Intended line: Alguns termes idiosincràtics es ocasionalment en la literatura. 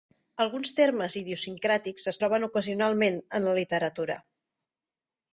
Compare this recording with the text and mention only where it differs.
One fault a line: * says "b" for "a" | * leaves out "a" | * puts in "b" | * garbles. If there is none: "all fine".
* puts in "troben"